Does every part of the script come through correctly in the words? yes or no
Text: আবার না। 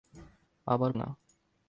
yes